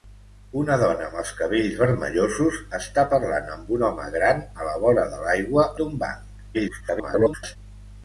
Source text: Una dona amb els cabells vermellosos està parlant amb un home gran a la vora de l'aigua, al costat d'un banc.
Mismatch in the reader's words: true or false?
true